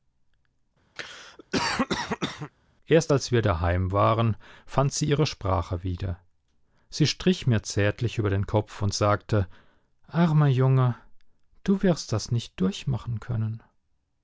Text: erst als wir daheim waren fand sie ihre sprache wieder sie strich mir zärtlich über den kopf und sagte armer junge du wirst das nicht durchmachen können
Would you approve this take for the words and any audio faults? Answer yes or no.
no